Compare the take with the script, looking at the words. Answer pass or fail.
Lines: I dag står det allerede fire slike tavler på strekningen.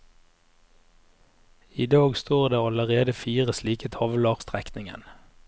fail